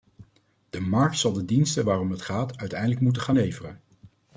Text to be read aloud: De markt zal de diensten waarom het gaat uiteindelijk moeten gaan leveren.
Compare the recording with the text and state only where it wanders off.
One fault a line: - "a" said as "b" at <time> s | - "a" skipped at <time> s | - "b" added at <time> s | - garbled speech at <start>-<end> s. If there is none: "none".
none